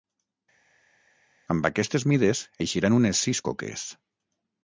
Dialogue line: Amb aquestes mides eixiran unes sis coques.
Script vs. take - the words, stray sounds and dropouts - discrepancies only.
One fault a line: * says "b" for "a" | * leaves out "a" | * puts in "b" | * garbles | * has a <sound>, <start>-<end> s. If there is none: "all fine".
all fine